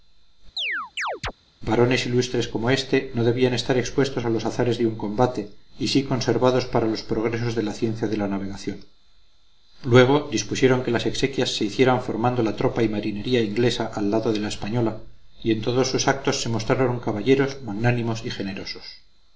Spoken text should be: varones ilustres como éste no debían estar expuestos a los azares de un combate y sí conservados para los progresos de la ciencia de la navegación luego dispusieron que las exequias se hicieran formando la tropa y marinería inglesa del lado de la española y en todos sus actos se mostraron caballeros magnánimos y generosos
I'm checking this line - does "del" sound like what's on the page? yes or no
no